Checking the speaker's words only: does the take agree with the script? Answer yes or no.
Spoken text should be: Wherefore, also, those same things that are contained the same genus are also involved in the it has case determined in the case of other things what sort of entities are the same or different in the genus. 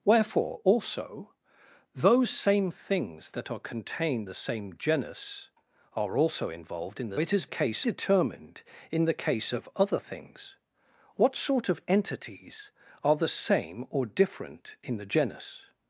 yes